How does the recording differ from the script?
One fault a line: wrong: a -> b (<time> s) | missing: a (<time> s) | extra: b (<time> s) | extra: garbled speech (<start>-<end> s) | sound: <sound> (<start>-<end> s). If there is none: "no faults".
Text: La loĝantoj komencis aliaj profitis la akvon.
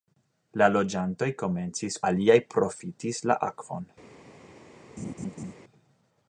sound: laugh (5.0-5.5 s)